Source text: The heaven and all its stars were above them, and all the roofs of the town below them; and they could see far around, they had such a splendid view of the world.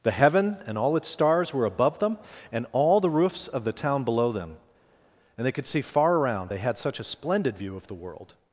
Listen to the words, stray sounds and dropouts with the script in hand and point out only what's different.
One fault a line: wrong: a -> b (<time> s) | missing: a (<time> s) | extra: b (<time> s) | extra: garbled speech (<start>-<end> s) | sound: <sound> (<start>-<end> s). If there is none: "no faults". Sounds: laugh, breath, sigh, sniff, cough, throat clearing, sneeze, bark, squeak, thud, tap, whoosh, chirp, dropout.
no faults